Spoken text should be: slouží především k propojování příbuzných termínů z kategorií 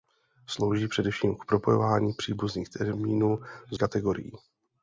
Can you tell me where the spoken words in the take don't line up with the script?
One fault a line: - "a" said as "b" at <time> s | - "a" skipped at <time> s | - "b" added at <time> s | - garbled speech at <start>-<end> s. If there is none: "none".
none